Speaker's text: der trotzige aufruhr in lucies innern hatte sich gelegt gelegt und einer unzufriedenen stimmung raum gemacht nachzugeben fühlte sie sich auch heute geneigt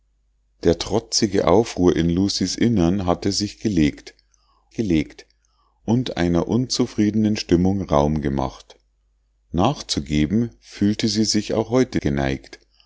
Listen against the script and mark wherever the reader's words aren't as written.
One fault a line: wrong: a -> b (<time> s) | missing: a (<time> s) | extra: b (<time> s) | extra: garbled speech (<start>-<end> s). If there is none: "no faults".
no faults